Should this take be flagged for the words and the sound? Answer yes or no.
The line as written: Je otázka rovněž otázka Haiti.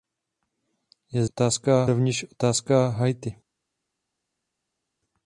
no